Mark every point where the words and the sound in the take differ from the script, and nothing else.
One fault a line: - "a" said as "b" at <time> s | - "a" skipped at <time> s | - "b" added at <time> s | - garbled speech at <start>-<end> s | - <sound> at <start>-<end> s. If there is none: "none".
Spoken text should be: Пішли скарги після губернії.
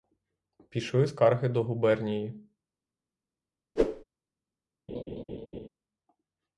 - "після" said as "до" at 1.5 s
- whoosh at 3.8-4.0 s
- laugh at 4.9-5.7 s